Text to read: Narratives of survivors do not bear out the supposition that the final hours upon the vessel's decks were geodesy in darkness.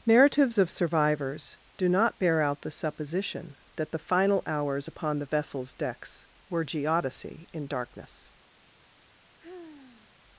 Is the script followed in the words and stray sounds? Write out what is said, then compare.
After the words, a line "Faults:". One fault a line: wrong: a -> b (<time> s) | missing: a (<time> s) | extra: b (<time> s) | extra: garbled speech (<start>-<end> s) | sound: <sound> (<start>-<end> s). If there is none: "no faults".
Narratives of survivors do not bear out the supposition that the final hours upon the vessel's decks were geodesy in darkness.
Faults:
sound: sigh (9.4-10.2 s)